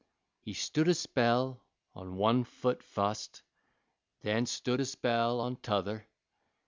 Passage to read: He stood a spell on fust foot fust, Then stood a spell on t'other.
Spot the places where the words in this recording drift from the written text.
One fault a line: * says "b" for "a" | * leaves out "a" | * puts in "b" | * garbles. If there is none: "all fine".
* says "one" for "fust"